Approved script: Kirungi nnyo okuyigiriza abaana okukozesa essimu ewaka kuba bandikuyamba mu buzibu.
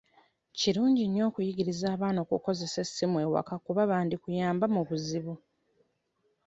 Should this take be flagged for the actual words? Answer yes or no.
no